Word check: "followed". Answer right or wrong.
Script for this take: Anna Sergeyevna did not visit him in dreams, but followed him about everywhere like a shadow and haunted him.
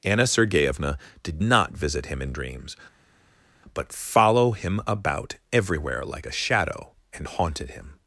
wrong